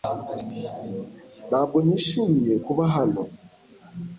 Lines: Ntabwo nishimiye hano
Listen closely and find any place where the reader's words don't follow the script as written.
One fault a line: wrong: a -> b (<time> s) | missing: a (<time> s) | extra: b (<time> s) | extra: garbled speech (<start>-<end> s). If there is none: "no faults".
extra: kuba (2.6 s)